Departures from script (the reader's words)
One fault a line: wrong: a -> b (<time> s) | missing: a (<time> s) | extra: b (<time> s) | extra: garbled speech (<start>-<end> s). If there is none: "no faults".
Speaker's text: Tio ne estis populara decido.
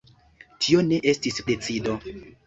missing: populara (1.4 s)